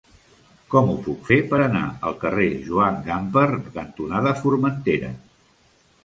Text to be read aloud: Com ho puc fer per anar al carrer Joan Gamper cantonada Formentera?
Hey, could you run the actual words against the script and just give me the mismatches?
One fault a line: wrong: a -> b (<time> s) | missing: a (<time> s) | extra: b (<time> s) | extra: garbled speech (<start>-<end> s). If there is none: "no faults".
no faults